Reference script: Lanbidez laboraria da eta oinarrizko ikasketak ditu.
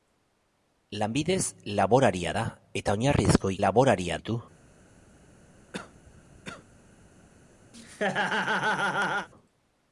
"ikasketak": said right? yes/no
no